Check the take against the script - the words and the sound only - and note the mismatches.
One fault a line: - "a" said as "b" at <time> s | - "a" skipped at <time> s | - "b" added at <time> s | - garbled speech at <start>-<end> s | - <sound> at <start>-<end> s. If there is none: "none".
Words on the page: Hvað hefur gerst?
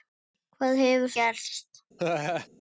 - laugh at 2.0-2.5 s